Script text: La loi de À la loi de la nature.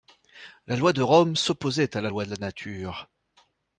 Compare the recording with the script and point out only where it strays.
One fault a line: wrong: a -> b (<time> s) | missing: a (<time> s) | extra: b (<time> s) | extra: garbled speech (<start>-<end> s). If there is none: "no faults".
extra: Rome s'opposait (1.0 s)